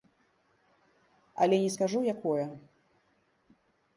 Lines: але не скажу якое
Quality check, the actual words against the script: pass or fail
pass